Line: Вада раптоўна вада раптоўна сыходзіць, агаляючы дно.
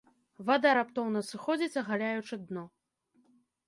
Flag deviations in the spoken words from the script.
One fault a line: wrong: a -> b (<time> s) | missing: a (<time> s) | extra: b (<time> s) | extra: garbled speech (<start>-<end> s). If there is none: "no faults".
missing: вада раптоўна (1.2 s)